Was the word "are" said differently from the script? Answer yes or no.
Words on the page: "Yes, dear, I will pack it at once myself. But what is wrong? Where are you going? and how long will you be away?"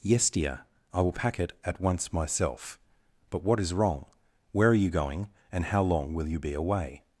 no